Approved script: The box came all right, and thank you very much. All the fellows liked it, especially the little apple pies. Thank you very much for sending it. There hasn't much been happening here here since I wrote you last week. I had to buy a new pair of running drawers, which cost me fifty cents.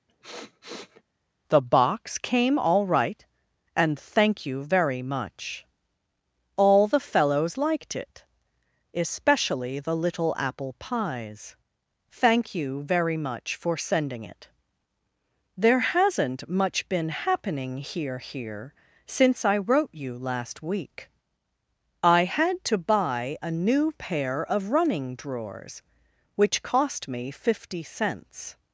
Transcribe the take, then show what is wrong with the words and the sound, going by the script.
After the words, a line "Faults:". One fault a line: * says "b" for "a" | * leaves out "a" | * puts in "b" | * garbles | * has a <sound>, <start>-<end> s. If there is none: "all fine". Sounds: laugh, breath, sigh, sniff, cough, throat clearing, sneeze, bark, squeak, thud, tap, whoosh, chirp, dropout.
The box came all right, and thank you very much. All the fellows liked it, especially the little apple pies. Thank you very much for sending it. There hasn't much been happening here here since I wrote you last week. I had to buy a new pair of running drawers, which cost me fifty cents.
Faults:
* has a sniff, 0.1-1.0 s